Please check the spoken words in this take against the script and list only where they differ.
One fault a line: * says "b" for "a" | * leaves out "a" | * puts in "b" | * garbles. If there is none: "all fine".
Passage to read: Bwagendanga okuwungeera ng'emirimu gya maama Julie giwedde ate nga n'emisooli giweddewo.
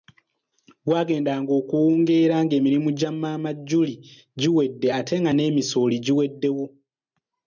all fine